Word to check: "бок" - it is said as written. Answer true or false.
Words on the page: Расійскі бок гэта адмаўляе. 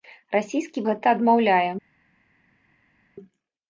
false